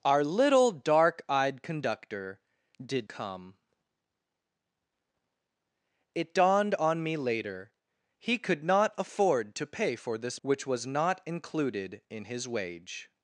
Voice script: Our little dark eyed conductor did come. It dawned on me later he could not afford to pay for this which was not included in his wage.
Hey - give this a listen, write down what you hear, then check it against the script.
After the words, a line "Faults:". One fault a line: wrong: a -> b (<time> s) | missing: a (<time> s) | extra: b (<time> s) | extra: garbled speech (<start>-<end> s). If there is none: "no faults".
Our little dark eyed conductor did come. It dawned on me later he could not afford to pay for this which was not included in his wage.
Faults:
no faults